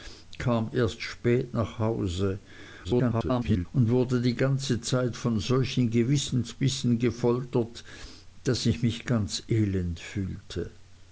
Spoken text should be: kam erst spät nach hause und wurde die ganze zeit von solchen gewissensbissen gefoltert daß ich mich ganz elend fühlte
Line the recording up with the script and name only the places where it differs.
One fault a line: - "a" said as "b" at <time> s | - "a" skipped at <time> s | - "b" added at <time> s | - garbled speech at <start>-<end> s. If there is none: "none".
- garbled speech at 2.8-3.7 s